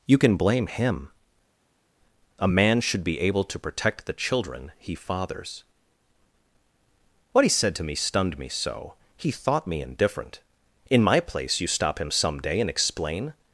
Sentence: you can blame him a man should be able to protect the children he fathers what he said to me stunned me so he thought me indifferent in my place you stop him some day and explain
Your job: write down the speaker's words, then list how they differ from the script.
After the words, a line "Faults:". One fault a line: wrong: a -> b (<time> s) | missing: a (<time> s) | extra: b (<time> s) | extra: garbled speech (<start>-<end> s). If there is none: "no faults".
you can blame him a man should be able to protect the children he fathers what he said to me stunned me so he thought me indifferent in my place you stop him some day and explain
Faults:
no faults